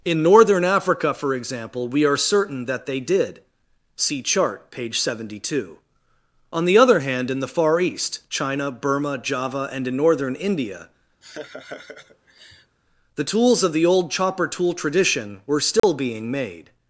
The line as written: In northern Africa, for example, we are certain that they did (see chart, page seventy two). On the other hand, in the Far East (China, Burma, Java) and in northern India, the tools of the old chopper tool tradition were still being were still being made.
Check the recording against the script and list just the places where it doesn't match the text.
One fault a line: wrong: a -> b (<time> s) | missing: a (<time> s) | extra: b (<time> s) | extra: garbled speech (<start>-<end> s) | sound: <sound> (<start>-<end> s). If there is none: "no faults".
sound: laugh (11.2-12.8 s)
sound: dropout (15.8-15.8 s)
missing: were still being (16.3 s)